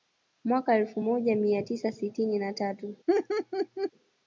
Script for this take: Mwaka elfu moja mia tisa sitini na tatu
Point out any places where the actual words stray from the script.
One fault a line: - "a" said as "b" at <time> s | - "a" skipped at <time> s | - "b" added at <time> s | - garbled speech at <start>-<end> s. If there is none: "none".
none